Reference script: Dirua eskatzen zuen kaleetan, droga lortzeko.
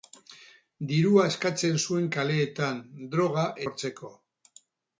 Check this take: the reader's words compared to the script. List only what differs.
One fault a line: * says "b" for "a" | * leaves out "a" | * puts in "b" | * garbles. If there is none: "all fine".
all fine